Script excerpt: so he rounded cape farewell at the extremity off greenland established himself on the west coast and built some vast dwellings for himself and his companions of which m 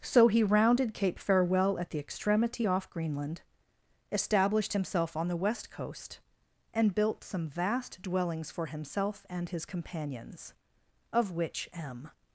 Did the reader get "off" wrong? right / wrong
right